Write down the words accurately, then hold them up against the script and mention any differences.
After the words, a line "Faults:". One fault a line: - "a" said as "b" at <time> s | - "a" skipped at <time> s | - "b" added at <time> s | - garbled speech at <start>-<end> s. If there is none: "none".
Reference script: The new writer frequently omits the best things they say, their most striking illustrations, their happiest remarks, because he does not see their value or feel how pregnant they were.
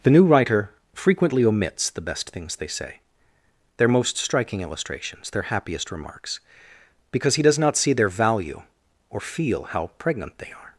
The new writer frequently omits the best things they say, their most striking illustrations, their happiest remarks, because he does not see their value or feel how pregnant they are.
Faults:
- "were" said as "are" at 10.5 s